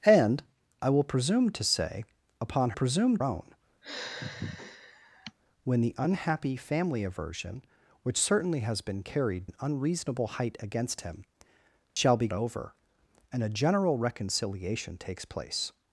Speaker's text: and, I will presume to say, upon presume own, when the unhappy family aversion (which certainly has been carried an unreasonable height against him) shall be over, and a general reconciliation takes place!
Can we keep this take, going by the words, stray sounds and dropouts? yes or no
no